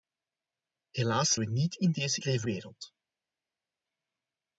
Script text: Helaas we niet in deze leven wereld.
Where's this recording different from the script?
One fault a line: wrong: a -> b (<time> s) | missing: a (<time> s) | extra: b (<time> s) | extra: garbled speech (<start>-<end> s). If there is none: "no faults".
no faults